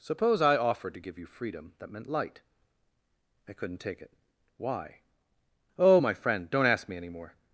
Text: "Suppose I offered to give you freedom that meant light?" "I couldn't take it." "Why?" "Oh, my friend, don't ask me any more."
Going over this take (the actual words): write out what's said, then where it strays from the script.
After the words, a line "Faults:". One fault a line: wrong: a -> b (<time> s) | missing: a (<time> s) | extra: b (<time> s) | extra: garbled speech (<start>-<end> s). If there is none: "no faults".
"Suppose I offered to give you freedom that meant light?" "I couldn't take it." "Why?" "Oh, my friend, don't ask me any more."
Faults:
no faults